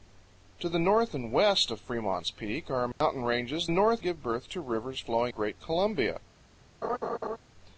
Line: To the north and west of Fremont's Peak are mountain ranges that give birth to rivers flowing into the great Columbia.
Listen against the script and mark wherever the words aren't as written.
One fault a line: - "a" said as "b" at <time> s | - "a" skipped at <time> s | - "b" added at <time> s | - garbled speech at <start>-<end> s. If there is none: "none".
- "that" said as "north" at 3.7 s
- "into the" skipped at 5.3 s